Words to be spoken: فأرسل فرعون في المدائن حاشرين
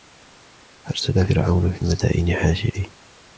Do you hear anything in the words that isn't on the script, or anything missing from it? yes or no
no